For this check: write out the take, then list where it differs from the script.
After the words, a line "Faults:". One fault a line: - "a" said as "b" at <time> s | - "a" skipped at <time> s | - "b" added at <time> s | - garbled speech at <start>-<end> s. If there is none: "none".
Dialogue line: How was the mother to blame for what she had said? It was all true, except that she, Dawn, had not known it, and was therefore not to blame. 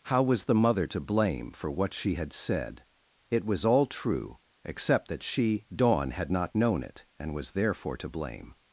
How was the mother to blame for what she had said? It was all true, except that she, Dawn, had not known it, and was therefore to blame.
Faults:
- "not" skipped at 8.0 s